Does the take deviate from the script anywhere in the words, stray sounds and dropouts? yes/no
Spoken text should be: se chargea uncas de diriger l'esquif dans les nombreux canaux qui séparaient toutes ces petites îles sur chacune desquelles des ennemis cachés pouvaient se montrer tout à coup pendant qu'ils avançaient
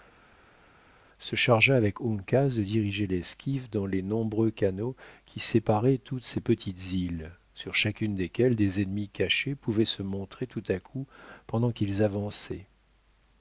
yes